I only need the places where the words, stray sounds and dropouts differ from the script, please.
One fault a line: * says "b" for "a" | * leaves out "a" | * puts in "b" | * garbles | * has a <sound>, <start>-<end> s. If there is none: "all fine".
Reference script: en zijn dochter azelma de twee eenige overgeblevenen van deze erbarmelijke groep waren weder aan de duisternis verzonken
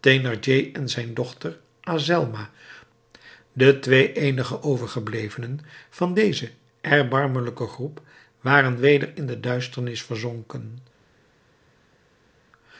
* says "in" for "aan"